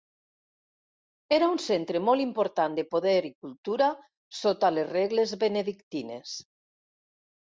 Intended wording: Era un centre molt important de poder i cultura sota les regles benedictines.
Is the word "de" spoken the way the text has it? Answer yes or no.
yes